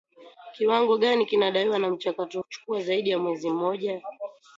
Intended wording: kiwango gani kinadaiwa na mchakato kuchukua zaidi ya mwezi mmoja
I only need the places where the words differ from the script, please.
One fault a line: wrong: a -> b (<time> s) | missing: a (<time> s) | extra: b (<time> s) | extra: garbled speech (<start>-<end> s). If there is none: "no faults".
no faults